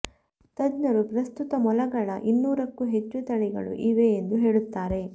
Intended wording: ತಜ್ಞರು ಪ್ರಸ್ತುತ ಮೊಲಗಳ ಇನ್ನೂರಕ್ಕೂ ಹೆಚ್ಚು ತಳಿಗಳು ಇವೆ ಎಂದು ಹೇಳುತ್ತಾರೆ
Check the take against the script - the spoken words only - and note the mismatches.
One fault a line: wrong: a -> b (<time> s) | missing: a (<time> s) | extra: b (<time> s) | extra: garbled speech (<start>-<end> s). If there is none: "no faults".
no faults